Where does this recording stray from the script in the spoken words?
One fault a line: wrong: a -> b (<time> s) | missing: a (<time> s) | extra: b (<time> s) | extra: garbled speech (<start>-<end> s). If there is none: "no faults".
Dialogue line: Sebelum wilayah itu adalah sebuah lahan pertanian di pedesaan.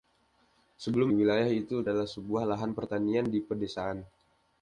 no faults